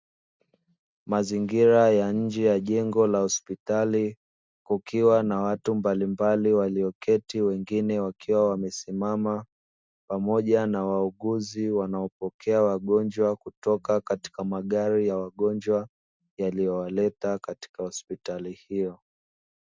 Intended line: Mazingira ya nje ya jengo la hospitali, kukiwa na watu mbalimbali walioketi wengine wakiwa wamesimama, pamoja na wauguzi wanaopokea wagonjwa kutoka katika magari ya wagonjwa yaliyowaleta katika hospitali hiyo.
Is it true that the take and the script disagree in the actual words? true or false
false